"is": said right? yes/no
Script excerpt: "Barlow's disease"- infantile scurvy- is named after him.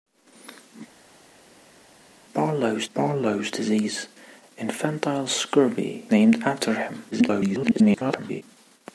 no